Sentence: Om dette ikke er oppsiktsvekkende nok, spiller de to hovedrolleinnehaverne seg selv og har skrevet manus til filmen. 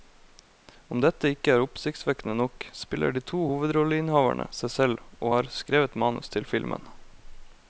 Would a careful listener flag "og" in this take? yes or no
no